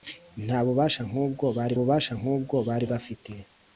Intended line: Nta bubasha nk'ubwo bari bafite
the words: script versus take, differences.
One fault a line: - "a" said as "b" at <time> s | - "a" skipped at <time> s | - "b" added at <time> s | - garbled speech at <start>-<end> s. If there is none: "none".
- "bubasha nk'ubwo bari" added at 1.8 s